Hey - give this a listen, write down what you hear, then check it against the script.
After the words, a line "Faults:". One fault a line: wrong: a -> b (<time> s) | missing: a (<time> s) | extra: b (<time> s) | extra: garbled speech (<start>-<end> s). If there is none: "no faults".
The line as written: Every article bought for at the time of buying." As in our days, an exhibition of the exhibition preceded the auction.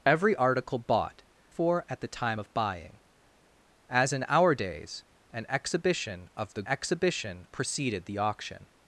Every article bought for at the time of buying." As in our days, an exhibition of the exhibition preceded the auction.
Faults:
no faults